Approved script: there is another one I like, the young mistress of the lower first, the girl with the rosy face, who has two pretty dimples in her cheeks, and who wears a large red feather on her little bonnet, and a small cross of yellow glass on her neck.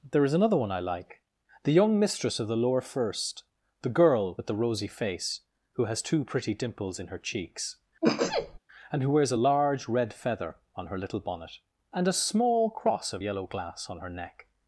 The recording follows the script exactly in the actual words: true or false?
true